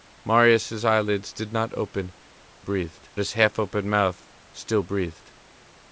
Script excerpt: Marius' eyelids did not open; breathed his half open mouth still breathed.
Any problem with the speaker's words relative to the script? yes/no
no